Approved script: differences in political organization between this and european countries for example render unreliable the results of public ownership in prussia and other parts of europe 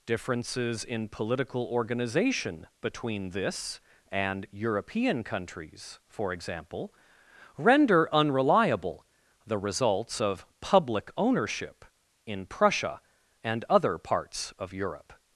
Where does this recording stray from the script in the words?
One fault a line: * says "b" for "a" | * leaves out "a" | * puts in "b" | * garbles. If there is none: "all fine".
all fine